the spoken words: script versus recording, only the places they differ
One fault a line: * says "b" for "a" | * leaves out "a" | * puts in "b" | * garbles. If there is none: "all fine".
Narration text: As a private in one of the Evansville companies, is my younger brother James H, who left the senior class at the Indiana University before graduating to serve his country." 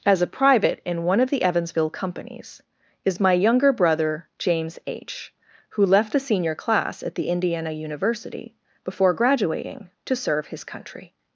all fine